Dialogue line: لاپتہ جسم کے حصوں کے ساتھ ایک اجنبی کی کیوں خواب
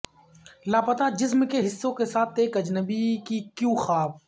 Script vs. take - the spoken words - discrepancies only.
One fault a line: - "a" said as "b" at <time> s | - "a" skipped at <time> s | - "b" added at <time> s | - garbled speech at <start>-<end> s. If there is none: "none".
none